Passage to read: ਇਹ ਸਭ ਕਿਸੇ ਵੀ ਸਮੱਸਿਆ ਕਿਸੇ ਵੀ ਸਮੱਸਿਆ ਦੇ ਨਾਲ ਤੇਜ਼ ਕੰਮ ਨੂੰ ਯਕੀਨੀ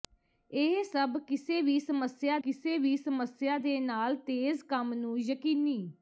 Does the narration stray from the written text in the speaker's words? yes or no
no